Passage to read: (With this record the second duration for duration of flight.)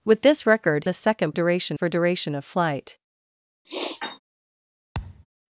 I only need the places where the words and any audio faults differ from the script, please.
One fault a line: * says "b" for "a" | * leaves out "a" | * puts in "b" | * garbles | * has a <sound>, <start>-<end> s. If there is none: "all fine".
* has a sniff, 3.6-4.2 s
* has a thud, 4.9-5.3 s